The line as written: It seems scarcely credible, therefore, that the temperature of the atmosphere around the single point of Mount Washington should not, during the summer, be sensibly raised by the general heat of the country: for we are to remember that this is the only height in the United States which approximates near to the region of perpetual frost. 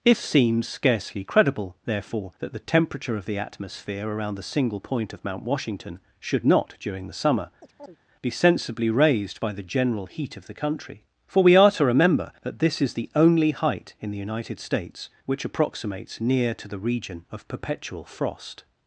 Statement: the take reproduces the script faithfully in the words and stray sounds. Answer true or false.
false